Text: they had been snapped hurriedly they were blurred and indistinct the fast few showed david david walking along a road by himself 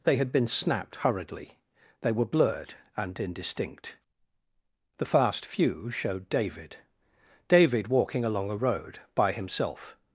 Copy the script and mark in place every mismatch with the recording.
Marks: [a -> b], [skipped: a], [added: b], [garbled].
they had been snapped hurriedly they were blurred and indistinct the fast few showed david david walking along a road by himself